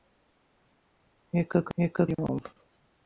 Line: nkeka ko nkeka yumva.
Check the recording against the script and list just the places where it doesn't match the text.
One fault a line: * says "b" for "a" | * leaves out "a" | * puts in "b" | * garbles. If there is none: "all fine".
all fine